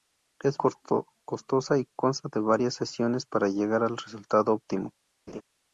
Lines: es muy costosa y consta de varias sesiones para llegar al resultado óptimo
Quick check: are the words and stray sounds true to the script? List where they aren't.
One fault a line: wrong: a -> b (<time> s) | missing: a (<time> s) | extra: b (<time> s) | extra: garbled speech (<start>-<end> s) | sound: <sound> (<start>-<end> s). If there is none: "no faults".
missing: muy (0.6 s)
sound: laugh (5.3-5.4 s)